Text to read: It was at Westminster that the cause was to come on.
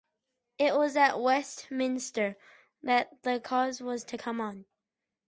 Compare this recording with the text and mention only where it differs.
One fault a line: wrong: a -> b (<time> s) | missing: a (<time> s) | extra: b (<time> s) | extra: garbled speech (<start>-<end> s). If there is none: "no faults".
no faults